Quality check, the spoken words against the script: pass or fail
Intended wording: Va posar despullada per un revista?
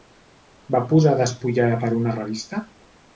fail